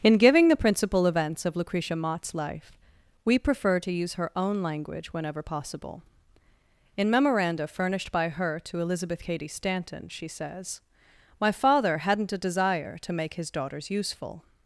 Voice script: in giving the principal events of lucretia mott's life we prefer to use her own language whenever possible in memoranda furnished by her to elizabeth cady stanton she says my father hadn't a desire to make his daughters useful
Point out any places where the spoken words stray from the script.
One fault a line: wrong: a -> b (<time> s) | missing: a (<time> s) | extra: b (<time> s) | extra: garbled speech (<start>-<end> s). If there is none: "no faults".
no faults